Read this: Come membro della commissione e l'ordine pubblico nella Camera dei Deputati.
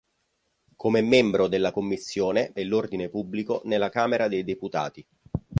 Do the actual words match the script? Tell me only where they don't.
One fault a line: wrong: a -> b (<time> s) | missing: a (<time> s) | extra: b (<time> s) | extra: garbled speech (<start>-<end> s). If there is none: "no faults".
no faults